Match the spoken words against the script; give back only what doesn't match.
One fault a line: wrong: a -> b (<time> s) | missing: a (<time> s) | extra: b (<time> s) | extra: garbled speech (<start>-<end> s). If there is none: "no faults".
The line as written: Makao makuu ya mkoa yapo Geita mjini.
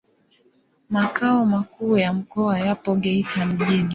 no faults